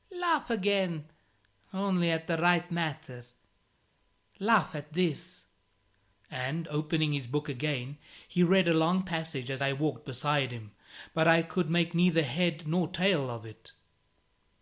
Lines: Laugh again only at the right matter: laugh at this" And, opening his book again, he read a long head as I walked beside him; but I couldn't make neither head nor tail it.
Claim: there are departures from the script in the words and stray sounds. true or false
true